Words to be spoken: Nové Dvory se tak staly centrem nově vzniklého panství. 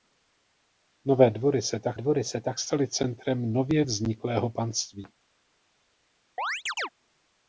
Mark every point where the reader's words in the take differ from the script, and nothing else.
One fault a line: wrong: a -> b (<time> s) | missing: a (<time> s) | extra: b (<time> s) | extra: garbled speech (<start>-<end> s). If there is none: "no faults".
extra: Dvory se tak (1.9 s)